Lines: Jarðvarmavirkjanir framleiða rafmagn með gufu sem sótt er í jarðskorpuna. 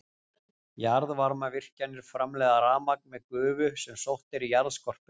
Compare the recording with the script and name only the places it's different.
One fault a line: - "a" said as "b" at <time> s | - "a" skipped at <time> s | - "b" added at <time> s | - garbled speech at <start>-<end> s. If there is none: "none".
none